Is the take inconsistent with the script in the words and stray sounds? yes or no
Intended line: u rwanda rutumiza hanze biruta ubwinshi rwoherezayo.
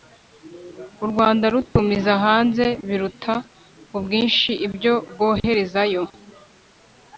yes